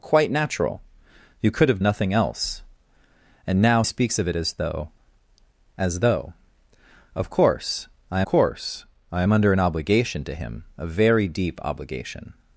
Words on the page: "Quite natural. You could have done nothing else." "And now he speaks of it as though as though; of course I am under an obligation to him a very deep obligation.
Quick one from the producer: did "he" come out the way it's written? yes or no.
no